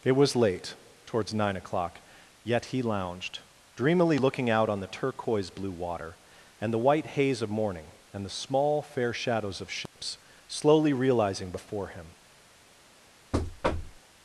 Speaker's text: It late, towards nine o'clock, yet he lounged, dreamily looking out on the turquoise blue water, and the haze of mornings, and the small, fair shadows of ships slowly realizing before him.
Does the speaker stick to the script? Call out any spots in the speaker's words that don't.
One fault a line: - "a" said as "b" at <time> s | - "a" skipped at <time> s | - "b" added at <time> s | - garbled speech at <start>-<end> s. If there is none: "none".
- "was" added at 0.1 s
- "white" added at 6.8 s
- "mornings" said as "morning" at 7.5 s